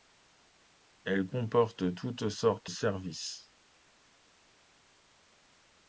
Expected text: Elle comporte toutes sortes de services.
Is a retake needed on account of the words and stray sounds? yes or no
yes